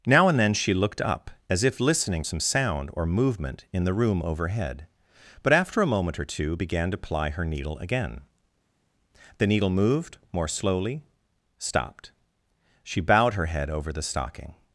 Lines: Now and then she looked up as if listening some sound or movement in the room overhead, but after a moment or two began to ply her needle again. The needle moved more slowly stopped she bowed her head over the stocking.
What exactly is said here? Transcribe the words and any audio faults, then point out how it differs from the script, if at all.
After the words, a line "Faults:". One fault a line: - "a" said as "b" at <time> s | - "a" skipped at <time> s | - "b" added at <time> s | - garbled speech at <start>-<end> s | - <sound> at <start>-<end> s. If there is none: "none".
Now and then she looked up as if listening some sound or movement in the room overhead, but after a moment or two began to ply her needle again. The needle moved more slowly stopped she bowed her head over the stocking.
Faults:
none